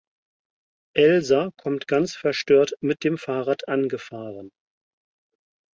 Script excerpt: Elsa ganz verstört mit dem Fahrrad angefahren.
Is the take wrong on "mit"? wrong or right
right